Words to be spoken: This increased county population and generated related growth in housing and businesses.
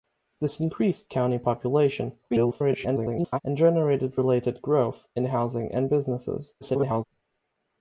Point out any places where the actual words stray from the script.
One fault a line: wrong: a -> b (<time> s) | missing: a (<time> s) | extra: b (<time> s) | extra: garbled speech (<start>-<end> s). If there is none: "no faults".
extra: garbled speech (2.3-3.4 s)
extra: garbled speech (6.6-7.0 s)